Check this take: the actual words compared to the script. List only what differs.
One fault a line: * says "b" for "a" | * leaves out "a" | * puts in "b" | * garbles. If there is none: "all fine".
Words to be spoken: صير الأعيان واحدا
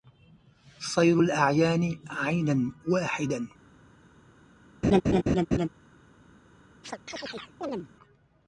* puts in "عينا"